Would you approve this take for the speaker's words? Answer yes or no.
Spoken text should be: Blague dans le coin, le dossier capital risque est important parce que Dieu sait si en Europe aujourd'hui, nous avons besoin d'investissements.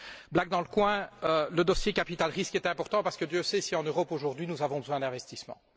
yes